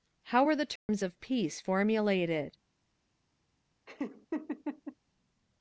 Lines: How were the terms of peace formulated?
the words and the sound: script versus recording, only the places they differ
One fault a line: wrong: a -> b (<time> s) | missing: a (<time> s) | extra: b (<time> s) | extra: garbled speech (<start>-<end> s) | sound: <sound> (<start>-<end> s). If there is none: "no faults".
sound: dropout (0.8-0.9 s)
sound: laugh (3.9-5.0 s)